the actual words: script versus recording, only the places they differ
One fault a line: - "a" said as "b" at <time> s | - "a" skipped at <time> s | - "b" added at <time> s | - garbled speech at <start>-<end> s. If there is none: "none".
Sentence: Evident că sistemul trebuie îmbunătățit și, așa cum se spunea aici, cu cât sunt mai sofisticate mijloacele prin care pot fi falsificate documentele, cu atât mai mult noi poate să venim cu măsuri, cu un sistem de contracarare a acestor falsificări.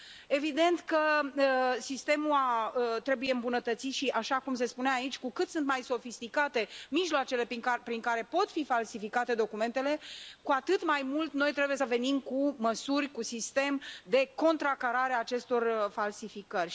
- "poate" said as "trebuie" at 11.5 s